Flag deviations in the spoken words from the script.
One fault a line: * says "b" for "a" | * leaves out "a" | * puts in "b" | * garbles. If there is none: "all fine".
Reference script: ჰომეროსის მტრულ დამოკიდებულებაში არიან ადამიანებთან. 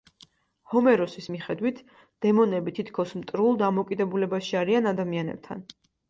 * puts in "მიხედვით დემონები თითქოს"